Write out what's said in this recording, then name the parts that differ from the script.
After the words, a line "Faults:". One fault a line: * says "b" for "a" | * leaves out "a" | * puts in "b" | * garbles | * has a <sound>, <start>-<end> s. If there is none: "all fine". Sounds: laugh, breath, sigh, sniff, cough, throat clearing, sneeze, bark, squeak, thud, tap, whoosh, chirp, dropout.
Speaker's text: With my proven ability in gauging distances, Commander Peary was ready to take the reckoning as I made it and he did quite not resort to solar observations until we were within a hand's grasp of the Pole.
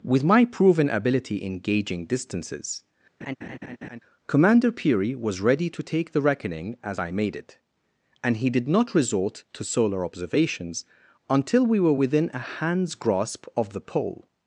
With my proven ability in gauging distances, Commander Peary was ready to take the reckoning as I made it and he did not resort to solar observations until we were within a hand's grasp of the Pole.
Faults:
* has a laugh, 3.2-4.0 s
* leaves out "quite"